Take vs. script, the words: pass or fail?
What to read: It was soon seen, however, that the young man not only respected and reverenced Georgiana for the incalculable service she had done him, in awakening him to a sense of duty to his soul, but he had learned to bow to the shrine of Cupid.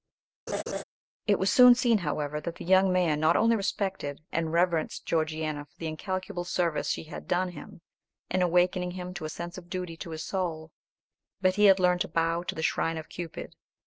pass